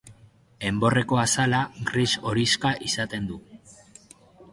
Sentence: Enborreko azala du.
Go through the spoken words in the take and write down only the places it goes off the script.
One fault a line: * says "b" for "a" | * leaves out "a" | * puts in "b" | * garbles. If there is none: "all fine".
* puts in "gris horixka izaten"